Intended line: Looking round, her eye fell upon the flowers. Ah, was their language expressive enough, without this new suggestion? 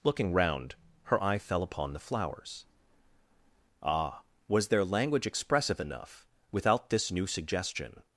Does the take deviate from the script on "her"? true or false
false